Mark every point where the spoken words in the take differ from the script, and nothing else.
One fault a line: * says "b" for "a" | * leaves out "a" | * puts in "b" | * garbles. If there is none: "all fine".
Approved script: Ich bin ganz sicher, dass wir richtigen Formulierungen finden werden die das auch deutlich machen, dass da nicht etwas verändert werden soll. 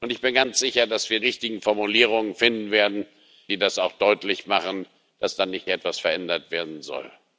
all fine